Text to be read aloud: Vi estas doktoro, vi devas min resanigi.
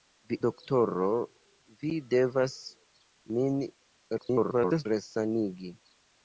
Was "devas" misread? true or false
false